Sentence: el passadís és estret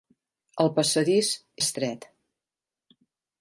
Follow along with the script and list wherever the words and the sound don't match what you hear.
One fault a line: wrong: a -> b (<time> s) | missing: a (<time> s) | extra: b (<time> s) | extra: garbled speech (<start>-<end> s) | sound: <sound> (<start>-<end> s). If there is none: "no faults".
missing: és (1.3 s)